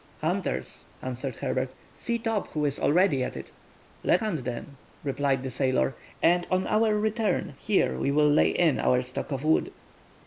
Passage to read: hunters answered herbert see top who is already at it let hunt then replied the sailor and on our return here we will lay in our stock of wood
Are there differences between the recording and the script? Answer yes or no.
no